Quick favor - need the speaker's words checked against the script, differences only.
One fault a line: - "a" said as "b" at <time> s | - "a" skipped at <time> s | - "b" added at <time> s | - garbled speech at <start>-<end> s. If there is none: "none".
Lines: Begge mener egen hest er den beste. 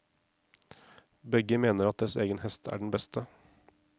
- "at deres" added at 1.9 s